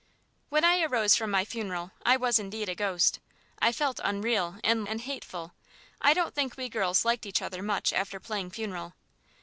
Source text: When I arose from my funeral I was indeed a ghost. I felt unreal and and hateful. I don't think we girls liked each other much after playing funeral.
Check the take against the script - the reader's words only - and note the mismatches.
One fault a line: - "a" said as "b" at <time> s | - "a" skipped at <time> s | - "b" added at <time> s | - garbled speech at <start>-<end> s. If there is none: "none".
none